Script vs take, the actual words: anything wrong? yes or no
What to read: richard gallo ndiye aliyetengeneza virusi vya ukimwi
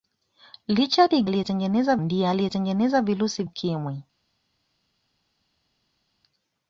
yes